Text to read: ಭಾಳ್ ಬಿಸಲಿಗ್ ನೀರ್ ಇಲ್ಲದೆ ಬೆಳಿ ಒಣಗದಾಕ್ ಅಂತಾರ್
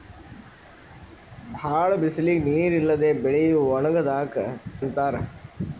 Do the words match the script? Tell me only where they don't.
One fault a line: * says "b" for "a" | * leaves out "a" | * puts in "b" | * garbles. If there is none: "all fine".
all fine